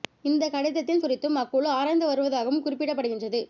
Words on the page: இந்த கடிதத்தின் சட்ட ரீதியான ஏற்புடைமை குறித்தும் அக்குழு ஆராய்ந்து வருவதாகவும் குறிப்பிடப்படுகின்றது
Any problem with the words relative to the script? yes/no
yes